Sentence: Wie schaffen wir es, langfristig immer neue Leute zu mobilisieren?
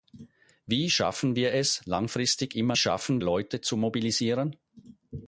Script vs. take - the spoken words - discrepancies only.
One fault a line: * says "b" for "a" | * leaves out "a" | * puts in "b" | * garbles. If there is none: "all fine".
* says "schaffen" for "neue"